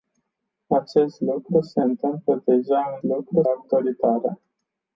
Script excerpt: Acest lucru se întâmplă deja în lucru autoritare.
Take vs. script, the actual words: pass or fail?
pass